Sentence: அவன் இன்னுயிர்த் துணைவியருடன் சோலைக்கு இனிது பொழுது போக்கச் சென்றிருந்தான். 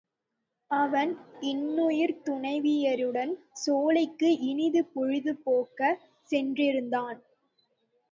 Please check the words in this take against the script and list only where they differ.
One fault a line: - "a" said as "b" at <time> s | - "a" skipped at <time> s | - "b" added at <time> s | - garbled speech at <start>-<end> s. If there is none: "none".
none